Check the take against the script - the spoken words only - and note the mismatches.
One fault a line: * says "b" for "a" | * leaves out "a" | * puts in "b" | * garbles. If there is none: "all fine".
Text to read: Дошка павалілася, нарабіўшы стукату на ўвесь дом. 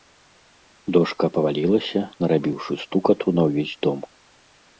all fine